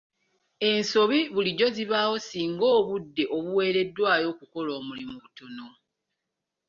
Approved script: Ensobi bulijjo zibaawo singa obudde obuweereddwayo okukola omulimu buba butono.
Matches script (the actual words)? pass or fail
fail